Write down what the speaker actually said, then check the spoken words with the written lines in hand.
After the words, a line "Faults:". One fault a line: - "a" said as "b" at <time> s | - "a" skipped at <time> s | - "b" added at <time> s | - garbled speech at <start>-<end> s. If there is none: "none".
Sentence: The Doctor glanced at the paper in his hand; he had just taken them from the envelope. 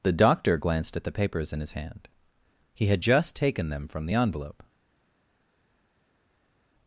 The Doctor glanced at the papers in his hand; he had just taken them from the envelope.
Faults:
- "paper" said as "papers" at 1.1 s